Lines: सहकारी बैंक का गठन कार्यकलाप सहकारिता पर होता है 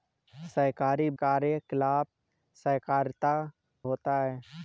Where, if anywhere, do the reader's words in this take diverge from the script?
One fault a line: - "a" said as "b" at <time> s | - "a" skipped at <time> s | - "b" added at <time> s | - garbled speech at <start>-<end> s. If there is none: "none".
- "बैंक का गठन" skipped at 1.1 s
- "पर" skipped at 3.3 s